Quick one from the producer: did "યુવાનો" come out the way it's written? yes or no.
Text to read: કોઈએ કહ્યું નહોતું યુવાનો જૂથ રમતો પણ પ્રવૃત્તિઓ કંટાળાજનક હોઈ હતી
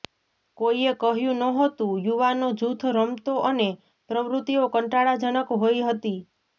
yes